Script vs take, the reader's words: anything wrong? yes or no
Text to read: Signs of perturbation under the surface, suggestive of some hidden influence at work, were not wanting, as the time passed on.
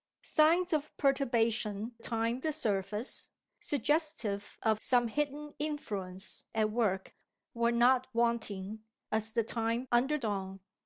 yes